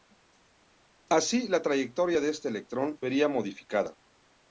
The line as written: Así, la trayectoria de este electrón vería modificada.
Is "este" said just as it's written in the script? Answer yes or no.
yes